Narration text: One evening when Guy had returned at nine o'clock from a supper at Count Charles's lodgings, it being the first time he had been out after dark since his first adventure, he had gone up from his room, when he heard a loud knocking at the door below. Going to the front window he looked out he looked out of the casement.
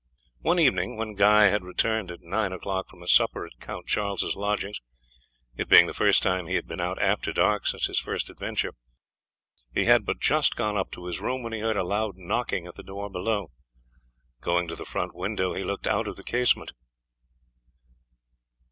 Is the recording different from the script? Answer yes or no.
yes